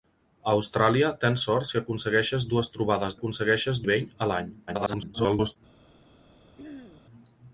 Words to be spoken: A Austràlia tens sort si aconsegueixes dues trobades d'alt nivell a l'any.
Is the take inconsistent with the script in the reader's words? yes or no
yes